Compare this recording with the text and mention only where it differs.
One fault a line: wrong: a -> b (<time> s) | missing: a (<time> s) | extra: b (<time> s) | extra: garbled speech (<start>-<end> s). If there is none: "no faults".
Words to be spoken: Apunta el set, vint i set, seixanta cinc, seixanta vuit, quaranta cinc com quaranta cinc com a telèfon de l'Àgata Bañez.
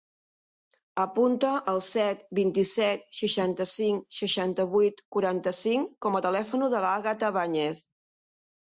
missing: quaranta cinc com (6.2 s)